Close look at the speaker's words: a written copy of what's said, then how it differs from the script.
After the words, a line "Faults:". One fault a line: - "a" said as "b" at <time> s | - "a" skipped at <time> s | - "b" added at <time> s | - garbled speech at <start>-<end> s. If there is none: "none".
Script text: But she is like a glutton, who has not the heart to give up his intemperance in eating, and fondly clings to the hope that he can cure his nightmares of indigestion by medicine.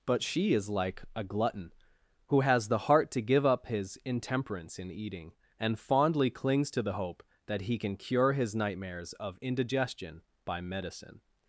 But she is like a glutton, who has the heart to give up his intemperance in eating, and fondly clings to the hope that he can cure his nightmares of indigestion by medicine.
Faults:
- "not" skipped at 2.7 s